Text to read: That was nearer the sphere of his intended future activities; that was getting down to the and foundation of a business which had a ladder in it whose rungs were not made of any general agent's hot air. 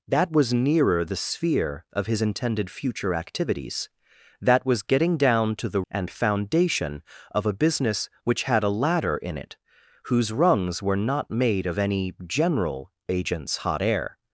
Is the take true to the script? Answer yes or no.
yes